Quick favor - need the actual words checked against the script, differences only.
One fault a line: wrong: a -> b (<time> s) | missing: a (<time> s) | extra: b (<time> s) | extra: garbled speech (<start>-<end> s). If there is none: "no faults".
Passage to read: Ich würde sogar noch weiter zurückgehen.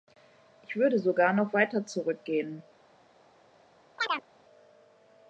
no faults